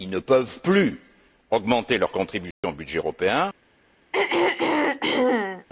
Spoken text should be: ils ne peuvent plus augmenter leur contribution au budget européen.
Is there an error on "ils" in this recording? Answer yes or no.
no